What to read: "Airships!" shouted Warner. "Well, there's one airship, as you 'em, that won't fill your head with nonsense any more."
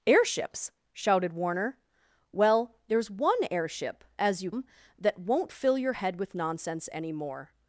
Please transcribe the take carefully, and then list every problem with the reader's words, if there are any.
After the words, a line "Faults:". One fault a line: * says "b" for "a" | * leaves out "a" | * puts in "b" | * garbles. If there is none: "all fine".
"Airships!" shouted Warner. "Well, there's one airship, as you 'em, that won't fill your head with nonsense any more."
Faults:
all fine